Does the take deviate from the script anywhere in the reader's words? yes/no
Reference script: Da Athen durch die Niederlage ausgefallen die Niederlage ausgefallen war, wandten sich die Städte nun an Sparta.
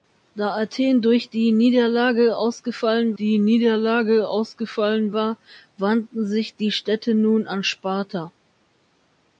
no